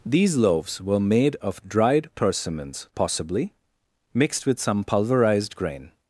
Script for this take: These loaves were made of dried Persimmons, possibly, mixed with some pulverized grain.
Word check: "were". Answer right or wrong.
right